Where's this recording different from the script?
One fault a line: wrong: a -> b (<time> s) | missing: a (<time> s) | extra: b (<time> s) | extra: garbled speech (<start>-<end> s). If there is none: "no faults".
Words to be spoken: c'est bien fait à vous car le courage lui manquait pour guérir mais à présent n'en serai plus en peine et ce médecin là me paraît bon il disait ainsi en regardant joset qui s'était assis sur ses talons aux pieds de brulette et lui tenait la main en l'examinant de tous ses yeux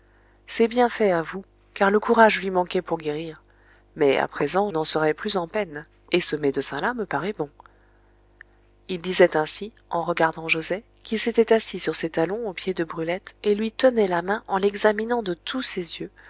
no faults